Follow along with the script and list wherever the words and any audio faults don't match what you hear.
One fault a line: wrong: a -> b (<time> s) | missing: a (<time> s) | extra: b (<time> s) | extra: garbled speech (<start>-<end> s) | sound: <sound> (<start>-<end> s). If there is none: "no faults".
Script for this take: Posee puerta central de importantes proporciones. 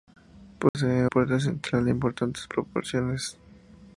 sound: dropout (0.7-0.7 s)